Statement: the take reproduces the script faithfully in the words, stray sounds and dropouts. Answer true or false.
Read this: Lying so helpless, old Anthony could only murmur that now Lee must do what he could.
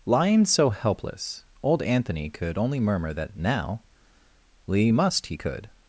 false